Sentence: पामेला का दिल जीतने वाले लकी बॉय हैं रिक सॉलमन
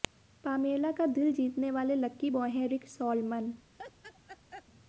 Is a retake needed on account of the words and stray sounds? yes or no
yes